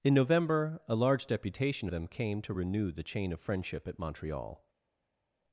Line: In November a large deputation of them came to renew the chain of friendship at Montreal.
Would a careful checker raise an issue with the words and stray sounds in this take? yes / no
yes